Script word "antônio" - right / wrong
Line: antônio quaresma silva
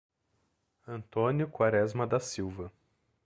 right